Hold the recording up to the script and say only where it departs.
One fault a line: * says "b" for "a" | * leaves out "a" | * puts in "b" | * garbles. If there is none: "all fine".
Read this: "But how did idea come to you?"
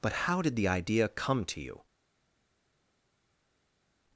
* puts in "the"